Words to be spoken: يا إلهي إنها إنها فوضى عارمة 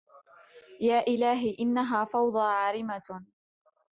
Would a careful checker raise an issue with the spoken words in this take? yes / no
yes